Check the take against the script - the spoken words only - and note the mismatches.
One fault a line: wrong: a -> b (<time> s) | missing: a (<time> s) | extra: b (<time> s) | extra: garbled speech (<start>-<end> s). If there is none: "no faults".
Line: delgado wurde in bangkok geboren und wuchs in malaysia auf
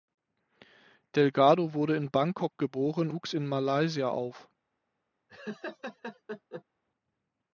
missing: und (3.1 s)